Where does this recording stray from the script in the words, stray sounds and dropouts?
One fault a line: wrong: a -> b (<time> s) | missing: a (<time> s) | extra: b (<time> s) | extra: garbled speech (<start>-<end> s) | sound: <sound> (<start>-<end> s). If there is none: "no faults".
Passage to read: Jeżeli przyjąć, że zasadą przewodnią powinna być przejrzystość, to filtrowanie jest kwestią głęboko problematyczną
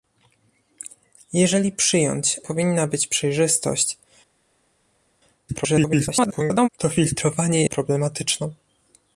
missing: że zasadą przewodnią (2.4 s)
extra: garbled speech (5.5-6.7 s)
missing: jest kwestią głęboko (7.6 s)